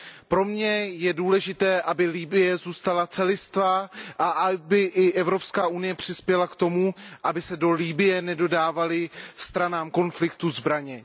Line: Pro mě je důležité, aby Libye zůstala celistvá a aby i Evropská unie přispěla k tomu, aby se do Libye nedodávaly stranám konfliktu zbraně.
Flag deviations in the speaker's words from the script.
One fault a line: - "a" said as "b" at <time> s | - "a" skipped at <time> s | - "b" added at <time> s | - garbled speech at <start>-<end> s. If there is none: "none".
none